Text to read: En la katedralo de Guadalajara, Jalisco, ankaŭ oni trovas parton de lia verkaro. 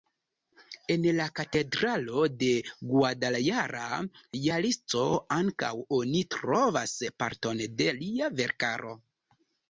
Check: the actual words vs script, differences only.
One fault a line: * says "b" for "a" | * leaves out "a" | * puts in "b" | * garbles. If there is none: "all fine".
all fine